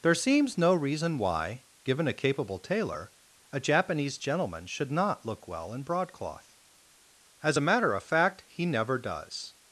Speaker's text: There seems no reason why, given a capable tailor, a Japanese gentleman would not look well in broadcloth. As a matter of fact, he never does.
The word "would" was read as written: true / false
false